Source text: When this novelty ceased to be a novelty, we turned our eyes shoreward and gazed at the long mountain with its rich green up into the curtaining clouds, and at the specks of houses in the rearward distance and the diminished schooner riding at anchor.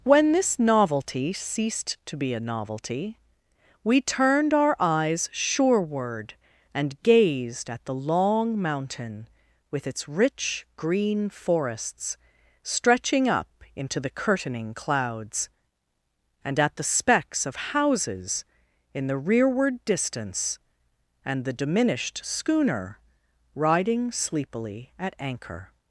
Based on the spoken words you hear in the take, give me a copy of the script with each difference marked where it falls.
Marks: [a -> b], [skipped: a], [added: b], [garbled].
When this novelty ceased to be a novelty, we turned our eyes shoreward and gazed at the long mountain with its rich green [added: forests stretching] up into the curtaining clouds, and at the specks of houses in the rearward distance and the diminished schooner riding [added: sleepily] at anchor.